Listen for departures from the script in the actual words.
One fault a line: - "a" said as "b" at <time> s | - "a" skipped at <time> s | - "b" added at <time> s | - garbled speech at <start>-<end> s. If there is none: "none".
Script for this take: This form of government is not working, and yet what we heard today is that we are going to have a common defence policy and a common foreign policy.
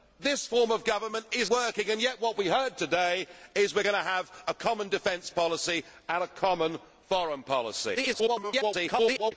- "not" skipped at 1.5 s
- garbled speech at 7.9-9.3 s